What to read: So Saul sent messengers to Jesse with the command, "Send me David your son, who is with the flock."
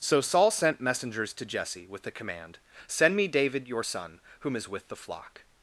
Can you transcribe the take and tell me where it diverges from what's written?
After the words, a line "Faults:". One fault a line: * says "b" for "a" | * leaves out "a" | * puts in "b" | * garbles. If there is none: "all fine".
So Saul sent messengers to Jesse with the command, "Send me David your son, whom is with the flock."
Faults:
* says "whom" for "who"